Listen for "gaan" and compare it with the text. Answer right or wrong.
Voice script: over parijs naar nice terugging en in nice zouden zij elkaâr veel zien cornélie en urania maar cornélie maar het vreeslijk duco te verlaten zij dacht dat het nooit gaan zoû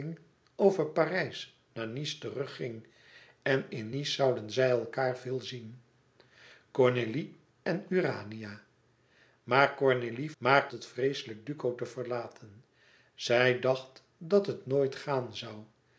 right